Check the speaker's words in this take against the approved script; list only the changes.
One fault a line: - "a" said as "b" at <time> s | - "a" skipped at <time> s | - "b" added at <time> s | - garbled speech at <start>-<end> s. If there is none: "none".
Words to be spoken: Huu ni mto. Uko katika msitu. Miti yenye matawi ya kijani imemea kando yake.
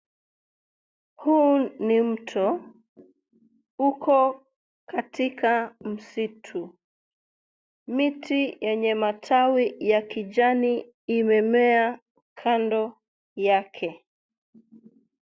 none